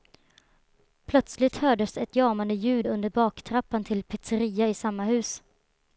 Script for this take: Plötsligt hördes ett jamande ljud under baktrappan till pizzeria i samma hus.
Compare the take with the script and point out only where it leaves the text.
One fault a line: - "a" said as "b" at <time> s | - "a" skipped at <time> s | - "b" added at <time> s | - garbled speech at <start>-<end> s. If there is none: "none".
none